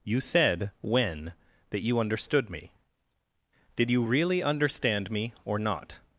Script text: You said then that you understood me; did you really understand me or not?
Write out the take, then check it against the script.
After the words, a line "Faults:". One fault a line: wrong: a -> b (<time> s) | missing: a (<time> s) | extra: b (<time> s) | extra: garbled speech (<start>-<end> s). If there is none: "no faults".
You said when that you understood me; did you really understand me or not?
Faults:
wrong: then -> when (0.8 s)